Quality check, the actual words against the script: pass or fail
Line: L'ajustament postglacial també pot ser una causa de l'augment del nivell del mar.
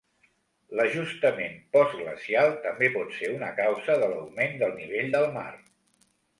pass